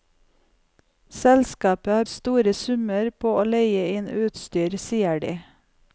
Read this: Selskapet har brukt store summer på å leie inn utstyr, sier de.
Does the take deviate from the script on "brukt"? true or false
true